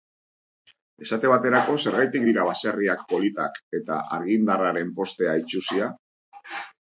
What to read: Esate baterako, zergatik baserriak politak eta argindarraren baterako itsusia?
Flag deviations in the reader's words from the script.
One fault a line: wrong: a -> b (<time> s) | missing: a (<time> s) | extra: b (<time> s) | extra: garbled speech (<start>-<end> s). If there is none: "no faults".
extra: dira (2.3 s)
wrong: baterako -> postea (5.0 s)